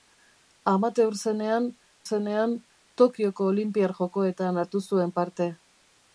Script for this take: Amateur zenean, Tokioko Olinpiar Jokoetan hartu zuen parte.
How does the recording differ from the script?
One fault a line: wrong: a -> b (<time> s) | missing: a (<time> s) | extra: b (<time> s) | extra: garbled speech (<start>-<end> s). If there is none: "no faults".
extra: zenean (2.0 s)